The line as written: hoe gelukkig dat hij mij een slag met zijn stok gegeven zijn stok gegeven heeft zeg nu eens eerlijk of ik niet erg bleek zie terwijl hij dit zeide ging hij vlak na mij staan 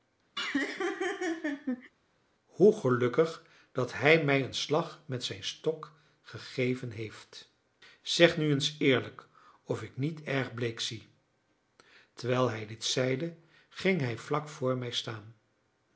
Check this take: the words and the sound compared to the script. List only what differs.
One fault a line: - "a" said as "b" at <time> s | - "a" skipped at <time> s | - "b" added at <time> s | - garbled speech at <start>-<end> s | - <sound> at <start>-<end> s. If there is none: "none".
- laugh at 0.4-1.9 s
- "zijn stok gegeven" skipped at 6.9 s
- "na" said as "voor" at 14.5 s